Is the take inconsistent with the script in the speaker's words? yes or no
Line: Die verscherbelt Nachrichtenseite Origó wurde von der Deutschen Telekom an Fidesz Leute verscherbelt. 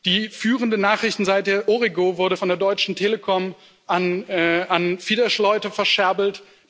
yes